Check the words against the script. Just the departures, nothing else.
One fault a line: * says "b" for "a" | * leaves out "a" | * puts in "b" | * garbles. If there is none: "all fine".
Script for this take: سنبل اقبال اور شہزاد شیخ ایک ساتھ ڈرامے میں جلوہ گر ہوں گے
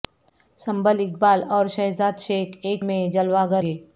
* leaves out "ساتھ ڈرامے"
* leaves out "ہوں"